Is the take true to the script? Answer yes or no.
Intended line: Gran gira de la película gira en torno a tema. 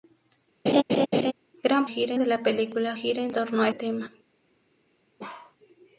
yes